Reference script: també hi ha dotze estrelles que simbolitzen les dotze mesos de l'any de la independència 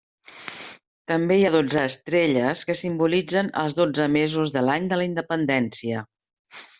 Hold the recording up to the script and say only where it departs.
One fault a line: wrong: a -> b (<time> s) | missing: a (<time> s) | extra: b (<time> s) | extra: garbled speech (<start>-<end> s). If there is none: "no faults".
wrong: les -> els (3.6 s)